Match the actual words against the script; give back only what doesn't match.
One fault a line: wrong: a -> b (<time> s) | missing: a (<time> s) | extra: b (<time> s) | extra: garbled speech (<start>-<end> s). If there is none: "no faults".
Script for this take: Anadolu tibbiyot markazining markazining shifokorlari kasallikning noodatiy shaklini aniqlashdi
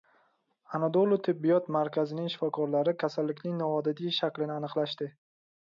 missing: markazining (2.3 s)